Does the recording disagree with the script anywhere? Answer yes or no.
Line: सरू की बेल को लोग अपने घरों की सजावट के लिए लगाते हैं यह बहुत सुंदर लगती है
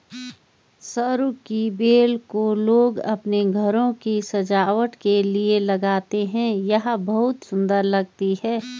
no